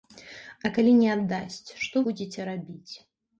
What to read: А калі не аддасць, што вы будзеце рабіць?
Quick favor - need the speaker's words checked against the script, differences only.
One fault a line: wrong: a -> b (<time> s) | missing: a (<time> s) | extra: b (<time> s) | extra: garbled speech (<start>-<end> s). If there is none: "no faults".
missing: вы (2.0 s)